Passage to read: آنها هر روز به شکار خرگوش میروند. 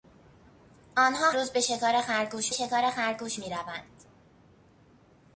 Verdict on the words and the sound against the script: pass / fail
fail